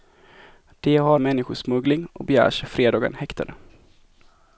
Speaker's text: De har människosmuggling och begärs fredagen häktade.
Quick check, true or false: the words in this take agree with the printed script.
true